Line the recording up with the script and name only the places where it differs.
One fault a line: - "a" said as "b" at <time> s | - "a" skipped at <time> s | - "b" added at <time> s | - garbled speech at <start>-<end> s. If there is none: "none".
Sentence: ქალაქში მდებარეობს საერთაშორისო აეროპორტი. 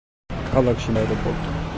- "მდებარეობს საერთაშორისო" skipped at 0.9 s